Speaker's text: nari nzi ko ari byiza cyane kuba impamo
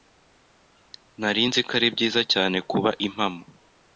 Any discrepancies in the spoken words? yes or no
no